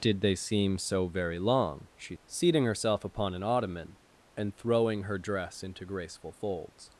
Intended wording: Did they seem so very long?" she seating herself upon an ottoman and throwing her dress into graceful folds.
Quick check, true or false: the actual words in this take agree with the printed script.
true